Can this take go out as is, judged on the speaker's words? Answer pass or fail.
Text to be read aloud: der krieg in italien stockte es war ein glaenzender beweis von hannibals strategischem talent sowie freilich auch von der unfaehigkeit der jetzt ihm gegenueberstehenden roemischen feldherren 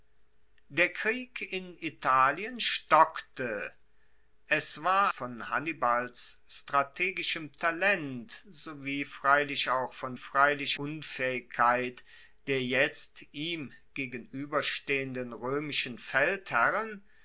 fail